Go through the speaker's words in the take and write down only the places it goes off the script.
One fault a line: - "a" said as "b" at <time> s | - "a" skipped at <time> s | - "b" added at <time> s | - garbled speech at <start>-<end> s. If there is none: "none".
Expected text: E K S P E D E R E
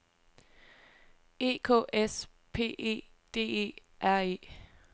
none